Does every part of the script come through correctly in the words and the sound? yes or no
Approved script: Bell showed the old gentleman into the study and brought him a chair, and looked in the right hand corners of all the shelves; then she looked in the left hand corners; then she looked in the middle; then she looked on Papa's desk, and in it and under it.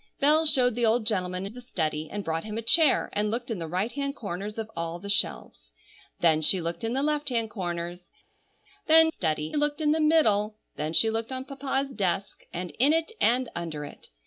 no